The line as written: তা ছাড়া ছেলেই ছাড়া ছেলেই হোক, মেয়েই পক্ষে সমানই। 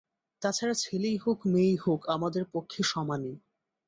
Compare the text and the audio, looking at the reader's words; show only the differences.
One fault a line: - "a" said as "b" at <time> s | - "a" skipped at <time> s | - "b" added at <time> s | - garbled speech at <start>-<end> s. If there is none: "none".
- "ছাড়া ছেলেই" said as "হোক মেয়েই" at 1.2 s
- "মেয়েই" said as "আমাদের" at 2.1 s